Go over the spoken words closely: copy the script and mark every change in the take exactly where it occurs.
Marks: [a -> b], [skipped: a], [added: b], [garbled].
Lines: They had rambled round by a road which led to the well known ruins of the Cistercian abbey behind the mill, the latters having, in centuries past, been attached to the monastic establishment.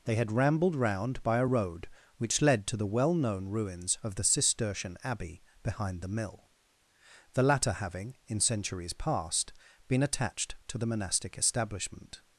They had rambled round by a road which led to the well known ruins of the Cistercian abbey behind the mill, the [latters -> latter] having, in centuries past, been attached to the monastic establishment.